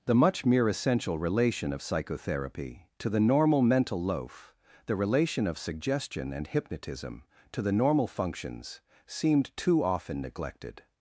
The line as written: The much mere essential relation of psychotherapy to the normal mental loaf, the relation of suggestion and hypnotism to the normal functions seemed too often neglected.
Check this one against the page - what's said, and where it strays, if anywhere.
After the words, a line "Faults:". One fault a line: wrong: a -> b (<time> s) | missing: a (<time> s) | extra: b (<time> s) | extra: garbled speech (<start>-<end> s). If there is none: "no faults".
The much mere essential relation of psychotherapy to the normal mental loaf, the relation of suggestion and hypnotism to the normal functions seemed too often neglected.
Faults:
no faults